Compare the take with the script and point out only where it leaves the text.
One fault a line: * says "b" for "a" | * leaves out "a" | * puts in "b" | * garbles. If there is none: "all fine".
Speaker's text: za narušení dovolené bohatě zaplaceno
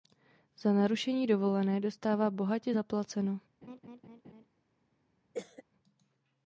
* puts in "dostává"